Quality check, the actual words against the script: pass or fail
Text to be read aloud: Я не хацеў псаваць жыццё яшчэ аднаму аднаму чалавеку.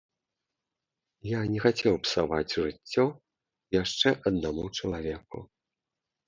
fail